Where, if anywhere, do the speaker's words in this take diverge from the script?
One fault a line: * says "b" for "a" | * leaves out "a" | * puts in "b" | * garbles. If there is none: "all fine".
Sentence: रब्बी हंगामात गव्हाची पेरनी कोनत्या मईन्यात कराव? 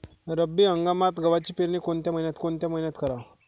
* puts in "कोनत्या मईन्यात"